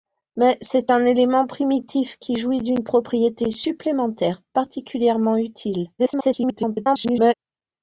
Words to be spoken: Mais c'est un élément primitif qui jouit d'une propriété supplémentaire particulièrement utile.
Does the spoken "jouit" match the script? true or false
true